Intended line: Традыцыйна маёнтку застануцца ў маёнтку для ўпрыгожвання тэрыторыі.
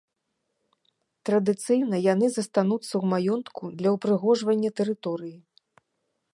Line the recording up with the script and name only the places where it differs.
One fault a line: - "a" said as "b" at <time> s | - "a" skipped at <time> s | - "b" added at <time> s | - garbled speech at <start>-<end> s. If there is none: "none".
- "маёнтку" said as "яны" at 2.1 s